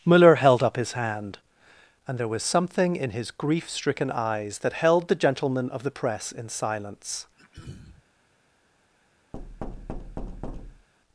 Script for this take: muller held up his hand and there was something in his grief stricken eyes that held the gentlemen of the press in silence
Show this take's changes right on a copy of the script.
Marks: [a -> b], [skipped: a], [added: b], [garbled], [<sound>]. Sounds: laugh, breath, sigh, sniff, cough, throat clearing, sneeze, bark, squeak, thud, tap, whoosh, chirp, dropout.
muller held up his hand and there was something in his grief stricken eyes that held the gentlemen of the press in silence [throat clearing] [thud]